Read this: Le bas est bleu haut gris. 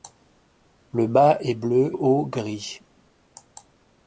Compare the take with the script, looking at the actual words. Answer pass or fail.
pass